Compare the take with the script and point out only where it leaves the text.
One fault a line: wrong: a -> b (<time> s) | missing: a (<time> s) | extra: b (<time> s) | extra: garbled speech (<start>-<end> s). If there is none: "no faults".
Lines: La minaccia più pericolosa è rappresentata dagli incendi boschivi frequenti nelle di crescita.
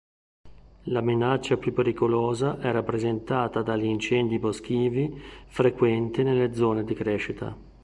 extra: zone (6.5 s)